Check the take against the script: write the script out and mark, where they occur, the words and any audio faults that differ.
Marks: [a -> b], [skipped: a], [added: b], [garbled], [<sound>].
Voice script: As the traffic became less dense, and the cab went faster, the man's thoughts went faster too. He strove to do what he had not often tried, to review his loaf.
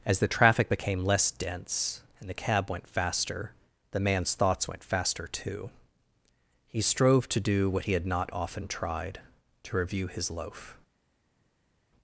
As the traffic became less dense, and the cab went faster, the man's thoughts went faster too. He strove to do what he had not often tried, to review his loaf.